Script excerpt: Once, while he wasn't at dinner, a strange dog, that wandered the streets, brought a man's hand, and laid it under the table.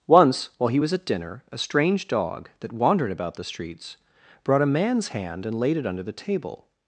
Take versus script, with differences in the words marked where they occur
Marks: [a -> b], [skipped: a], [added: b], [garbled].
Once, while he [wasn't -> was] at dinner, a strange dog, that wandered [added: about] the streets, brought a man's hand, and laid it under the table.